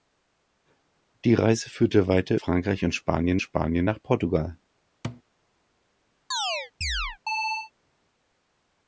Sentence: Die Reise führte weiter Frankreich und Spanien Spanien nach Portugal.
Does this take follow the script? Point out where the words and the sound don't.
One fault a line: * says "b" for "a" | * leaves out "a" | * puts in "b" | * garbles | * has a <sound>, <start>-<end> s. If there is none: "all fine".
* has a thud, 5.0-5.2 s
* has a chirp, 6.3-7.7 s